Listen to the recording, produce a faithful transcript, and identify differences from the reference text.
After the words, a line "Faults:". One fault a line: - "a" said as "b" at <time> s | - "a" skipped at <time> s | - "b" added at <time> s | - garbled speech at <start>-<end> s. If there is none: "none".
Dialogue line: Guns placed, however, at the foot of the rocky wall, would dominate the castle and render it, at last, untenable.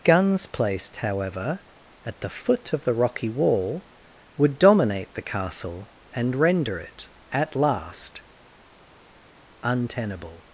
Guns placed, however, at the foot of the rocky wall, would dominate the castle and render it, at last, untenable.
Faults:
none